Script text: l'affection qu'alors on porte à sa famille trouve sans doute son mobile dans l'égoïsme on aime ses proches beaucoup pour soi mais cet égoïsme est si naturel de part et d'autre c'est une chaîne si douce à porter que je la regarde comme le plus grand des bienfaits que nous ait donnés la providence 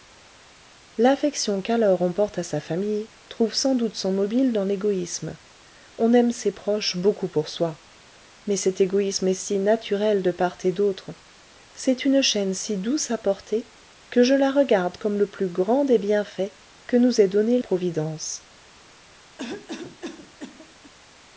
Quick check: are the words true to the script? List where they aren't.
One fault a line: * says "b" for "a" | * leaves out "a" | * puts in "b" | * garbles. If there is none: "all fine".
* leaves out "la"